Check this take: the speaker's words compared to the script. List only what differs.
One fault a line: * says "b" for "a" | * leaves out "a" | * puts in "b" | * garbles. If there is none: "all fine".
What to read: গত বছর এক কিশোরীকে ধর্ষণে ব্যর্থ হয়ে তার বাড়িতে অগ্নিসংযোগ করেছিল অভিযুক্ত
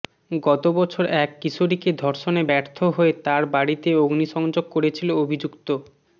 all fine